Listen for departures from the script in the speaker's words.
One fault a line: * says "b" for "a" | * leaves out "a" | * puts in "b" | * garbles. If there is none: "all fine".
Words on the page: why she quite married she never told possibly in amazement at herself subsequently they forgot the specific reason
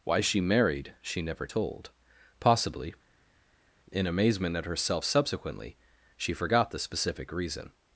* leaves out "quite"
* says "she" for "they"